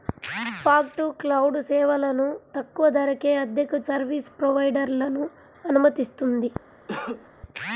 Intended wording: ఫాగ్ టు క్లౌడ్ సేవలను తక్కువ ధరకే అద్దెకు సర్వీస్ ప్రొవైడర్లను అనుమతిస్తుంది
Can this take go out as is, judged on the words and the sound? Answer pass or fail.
fail